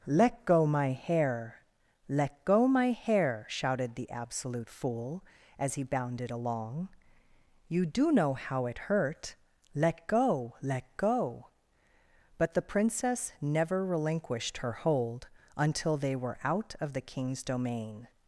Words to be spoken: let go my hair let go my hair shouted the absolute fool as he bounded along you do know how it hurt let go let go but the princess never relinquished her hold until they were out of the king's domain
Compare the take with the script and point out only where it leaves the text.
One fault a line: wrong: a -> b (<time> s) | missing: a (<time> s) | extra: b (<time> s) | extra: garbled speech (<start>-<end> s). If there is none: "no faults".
no faults